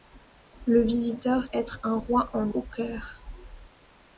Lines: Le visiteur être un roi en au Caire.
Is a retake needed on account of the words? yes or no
no